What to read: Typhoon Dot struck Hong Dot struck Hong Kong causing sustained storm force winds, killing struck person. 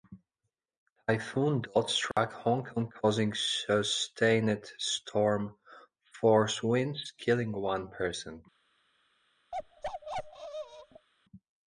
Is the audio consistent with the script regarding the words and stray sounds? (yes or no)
no